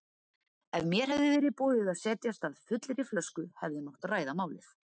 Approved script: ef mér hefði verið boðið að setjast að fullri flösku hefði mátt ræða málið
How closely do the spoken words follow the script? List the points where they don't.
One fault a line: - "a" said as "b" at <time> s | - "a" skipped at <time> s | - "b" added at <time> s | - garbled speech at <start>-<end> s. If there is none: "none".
none